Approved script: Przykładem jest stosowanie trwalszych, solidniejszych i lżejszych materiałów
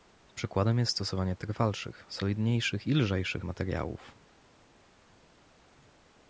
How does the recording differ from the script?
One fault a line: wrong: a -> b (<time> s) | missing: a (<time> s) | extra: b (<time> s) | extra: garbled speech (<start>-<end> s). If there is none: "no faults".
no faults